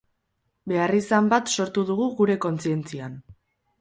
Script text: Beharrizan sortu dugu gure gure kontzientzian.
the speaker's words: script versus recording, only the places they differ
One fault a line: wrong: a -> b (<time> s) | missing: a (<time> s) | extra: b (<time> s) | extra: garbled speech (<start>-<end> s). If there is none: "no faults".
extra: bat (1.3 s)
missing: gure (2.4 s)